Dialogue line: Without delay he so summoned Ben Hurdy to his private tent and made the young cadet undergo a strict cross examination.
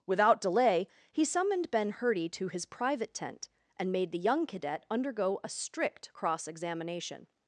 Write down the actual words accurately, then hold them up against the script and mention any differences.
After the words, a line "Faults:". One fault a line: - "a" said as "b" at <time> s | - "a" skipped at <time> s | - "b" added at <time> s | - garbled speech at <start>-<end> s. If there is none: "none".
Without delay he summoned Ben Hurdy to his private tent and made the young cadet undergo a strict cross examination.
Faults:
- "so" skipped at 1.2 s